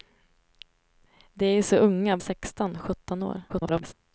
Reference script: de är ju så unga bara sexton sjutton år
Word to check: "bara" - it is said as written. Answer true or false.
false